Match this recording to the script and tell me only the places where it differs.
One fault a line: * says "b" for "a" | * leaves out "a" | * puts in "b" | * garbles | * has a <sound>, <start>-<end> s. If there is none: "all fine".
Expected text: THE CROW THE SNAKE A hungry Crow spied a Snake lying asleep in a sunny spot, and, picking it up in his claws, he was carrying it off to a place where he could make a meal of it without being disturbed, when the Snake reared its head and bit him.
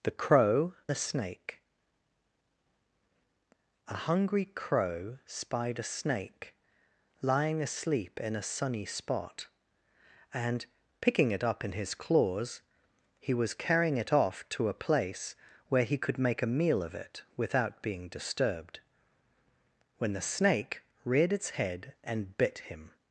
all fine